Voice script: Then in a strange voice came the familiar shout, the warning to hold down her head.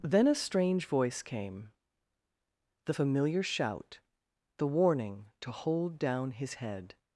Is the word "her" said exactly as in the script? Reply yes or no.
no